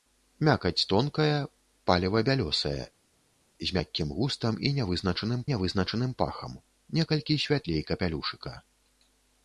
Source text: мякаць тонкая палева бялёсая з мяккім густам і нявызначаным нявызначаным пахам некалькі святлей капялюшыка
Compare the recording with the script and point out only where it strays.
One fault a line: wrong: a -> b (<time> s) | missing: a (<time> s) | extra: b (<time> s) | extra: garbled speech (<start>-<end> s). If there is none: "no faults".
no faults